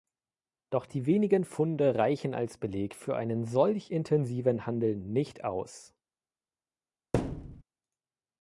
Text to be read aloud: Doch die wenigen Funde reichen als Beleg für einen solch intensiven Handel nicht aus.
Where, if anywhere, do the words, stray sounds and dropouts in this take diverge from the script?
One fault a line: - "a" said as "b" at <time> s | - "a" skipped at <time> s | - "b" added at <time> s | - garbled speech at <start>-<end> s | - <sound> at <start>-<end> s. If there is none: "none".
- thud at 7.1-7.6 s